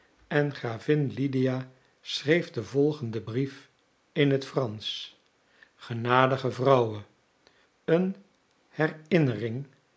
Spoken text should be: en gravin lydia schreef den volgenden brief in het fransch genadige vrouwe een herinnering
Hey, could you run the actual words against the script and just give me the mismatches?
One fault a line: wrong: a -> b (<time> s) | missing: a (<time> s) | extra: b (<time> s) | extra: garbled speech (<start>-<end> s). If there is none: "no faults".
no faults